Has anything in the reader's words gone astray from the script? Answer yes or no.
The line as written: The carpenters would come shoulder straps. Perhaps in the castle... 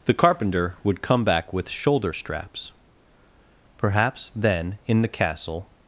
yes